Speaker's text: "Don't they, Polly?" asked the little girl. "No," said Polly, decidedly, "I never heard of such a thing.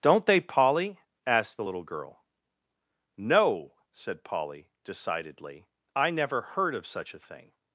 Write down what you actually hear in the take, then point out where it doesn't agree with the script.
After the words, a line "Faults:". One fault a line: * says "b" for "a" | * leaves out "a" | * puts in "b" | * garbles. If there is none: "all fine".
"Don't they, Polly?" asked the little girl. "No," said Polly, decidedly, "I never heard of such a thing.
Faults:
all fine